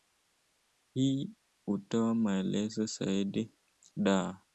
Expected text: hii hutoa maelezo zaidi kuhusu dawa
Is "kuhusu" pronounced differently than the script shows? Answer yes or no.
yes